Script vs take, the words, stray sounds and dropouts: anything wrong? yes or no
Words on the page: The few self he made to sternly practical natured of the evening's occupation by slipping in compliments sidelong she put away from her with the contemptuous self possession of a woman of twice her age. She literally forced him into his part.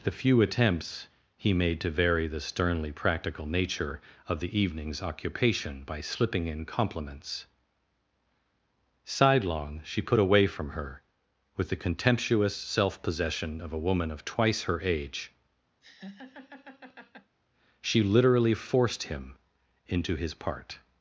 yes